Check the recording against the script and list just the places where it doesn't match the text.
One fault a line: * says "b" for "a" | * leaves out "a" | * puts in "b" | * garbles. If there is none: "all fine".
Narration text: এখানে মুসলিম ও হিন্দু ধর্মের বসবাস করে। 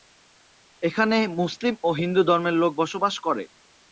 * puts in "লোক"